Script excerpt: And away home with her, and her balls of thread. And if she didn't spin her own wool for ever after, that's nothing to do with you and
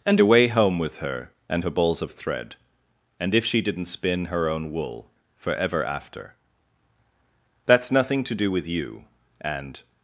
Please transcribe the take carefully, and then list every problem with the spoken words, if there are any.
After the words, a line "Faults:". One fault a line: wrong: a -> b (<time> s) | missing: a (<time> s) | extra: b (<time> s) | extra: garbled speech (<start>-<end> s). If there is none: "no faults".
And away home with her, and her balls of thread. And if she didn't spin her own wool for ever after, that's nothing to do with you and
Faults:
no faults